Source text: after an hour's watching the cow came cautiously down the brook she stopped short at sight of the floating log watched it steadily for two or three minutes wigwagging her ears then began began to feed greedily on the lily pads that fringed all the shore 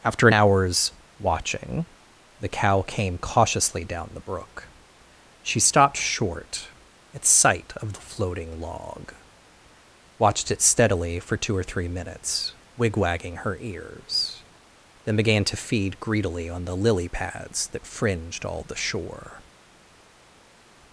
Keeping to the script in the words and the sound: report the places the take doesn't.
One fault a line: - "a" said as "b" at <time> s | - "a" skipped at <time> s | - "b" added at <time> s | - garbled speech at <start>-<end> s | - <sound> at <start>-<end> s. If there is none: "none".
- "began" skipped at 15.4 s